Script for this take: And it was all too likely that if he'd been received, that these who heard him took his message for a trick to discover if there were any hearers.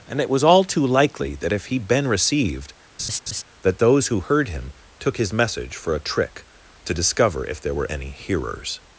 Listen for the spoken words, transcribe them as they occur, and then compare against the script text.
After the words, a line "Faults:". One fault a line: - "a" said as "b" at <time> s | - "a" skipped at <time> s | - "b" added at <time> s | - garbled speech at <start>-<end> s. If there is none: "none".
And it was all too likely that if he'd been received, that those who heard him took his message for a trick to discover if there were any hearers.
Faults:
- "these" said as "those" at 3.8 s